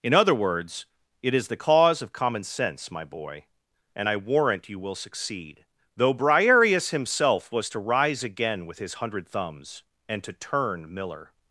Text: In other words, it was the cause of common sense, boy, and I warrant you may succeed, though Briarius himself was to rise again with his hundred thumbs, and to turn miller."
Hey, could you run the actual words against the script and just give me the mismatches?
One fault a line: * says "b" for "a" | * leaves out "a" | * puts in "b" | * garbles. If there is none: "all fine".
* says "is" for "was"
* puts in "my"
* says "will" for "may"